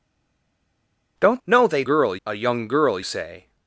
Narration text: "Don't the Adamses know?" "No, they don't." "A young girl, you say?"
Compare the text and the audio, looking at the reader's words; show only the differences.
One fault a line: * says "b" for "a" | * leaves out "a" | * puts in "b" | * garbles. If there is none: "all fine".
* leaves out "the Adamses know"
* says "girl" for "don't"
* leaves out "you"